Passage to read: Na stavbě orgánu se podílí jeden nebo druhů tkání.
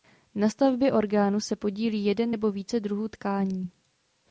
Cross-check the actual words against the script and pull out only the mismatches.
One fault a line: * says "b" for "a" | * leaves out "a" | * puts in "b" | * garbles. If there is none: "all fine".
* puts in "více"